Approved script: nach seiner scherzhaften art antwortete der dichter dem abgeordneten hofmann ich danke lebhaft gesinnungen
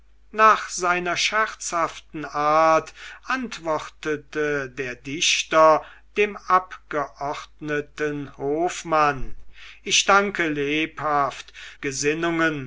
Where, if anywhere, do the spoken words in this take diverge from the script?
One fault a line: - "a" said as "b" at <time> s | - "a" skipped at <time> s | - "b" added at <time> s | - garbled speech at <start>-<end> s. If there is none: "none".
none